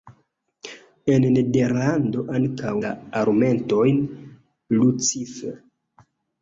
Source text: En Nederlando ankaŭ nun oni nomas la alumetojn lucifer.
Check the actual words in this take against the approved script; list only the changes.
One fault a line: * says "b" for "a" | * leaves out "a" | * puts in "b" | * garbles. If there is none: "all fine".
* leaves out "nun oni nomas"